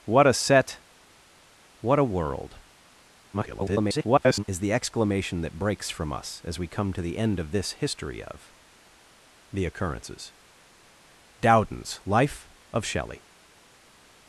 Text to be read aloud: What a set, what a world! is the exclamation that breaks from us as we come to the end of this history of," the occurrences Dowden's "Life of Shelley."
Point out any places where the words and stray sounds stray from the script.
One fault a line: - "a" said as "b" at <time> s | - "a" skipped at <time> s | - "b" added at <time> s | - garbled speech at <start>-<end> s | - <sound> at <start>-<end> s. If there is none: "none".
- garbled speech at 3.3-4.4 s